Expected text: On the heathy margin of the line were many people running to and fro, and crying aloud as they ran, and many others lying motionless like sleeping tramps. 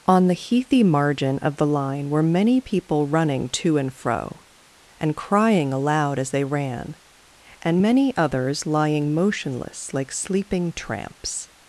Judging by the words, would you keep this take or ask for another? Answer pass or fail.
pass